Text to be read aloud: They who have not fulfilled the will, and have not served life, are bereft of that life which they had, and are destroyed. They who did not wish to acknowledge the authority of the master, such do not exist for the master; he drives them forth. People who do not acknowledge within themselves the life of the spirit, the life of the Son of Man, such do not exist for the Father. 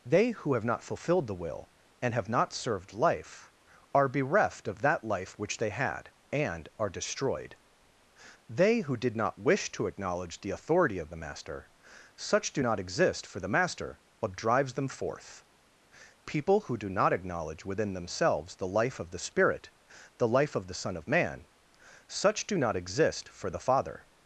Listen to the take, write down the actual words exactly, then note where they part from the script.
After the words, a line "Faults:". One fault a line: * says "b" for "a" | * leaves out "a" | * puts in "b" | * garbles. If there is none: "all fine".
They who have not fulfilled the will, and have not served life, are bereft of that life which they had, and are destroyed. They who did not wish to acknowledge the authority of the master, such do not exist for the master; but drives them forth. People who do not acknowledge within themselves the life of the spirit, the life of the Son of Man, such do not exist for the Father.
Faults:
* says "but" for "he"